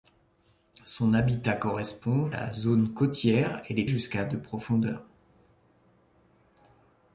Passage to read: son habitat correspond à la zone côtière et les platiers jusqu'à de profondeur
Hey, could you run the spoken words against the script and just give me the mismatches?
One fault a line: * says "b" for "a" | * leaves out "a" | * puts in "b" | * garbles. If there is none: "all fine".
* leaves out "à"
* leaves out "platiers"